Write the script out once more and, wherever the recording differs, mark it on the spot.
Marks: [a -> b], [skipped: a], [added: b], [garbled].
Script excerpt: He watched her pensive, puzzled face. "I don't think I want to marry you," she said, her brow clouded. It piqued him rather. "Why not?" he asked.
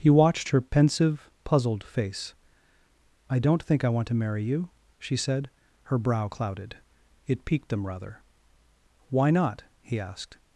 He watched her pensive, puzzled face. "I don't think I want to marry you," she said, her brow clouded. It piqued [him -> them] rather. "Why not?" he asked.